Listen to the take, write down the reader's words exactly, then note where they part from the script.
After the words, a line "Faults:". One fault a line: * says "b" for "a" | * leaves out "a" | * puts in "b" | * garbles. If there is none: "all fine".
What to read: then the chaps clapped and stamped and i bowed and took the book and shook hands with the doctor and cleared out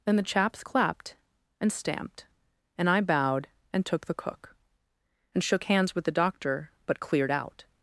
then the chaps clapped and stamped and i bowed and took the cook and shook hands with the doctor but cleared out
Faults:
* says "cook" for "book"
* says "but" for "and"